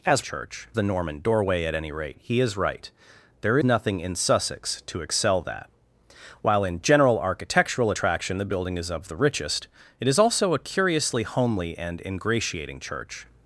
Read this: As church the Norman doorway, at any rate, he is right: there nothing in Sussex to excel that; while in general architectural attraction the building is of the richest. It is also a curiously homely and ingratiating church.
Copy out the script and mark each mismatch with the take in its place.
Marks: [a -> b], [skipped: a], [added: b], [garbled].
As church the Norman doorway, at any rate, he is right: there nothing in Sussex to excel that; while in general architectural attraction the building is of the richest. It is also a curiously homely and ingratiating church.